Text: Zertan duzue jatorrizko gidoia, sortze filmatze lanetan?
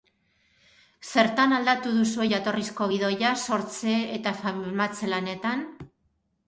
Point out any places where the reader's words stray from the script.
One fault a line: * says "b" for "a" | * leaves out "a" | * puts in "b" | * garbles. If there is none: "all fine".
* puts in "aldatu"
* puts in "eta"